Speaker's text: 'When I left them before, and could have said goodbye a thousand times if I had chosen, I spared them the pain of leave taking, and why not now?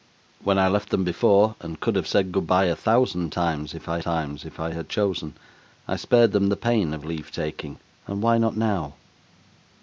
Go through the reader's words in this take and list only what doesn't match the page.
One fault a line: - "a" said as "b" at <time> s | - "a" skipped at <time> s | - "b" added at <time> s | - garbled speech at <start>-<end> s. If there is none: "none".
- "times if I" added at 4.0 s